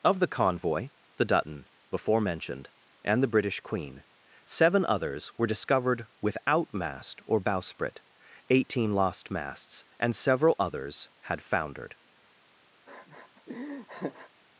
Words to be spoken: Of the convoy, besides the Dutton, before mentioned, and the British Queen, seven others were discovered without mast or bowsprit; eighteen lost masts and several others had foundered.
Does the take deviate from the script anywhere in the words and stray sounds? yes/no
yes